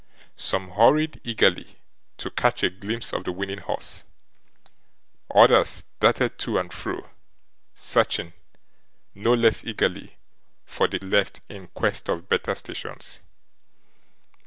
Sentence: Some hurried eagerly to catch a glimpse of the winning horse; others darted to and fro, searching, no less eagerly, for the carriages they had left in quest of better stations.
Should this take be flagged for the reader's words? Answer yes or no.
yes